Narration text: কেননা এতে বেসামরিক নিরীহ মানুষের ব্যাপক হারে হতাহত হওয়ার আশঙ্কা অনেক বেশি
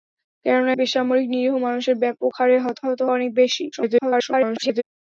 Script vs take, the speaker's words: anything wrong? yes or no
yes